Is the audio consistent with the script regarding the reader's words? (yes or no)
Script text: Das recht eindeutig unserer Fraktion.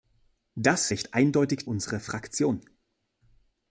yes